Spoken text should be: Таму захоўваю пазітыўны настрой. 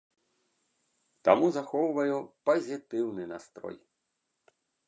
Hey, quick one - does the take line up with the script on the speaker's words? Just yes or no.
yes